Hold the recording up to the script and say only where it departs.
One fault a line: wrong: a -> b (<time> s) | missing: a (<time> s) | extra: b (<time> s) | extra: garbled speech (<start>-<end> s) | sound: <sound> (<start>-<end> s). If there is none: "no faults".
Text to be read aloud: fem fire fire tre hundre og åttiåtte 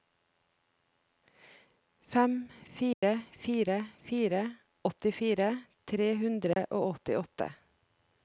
sound: dropout (2.9-3.0 s)
extra: fire åttifire (4.1 s)
sound: dropout (6.5-6.6 s)